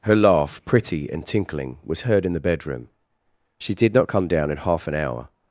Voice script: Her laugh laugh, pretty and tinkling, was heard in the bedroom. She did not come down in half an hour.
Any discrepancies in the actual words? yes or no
yes